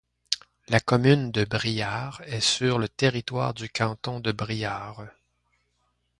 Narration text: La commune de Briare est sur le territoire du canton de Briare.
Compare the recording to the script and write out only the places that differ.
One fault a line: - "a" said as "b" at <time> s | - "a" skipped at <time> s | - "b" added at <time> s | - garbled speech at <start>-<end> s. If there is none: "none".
none